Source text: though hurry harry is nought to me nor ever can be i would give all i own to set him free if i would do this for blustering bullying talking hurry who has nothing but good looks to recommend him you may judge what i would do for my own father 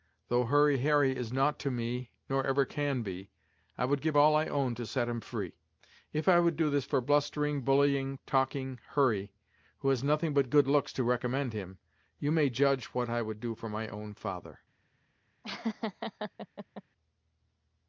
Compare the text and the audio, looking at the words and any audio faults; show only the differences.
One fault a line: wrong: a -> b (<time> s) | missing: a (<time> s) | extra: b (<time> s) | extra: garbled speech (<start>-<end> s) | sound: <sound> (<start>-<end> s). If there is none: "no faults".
sound: laugh (15.4-16.8 s)